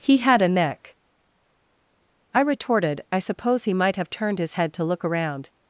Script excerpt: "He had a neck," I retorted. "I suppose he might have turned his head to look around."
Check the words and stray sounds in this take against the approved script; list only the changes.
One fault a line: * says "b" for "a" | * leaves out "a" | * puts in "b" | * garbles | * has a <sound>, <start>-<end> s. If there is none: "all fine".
all fine